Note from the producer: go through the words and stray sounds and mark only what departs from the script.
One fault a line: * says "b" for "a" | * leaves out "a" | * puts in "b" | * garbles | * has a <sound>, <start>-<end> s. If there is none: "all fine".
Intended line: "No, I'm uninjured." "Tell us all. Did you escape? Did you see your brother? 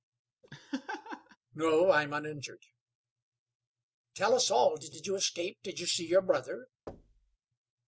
* has a laugh, 0.4-1.4 s
* puts in "did"
* has a thud, 6.9-7.4 s